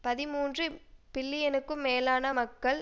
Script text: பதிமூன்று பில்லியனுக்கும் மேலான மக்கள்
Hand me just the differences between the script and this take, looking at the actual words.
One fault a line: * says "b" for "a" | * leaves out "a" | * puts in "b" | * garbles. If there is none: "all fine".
all fine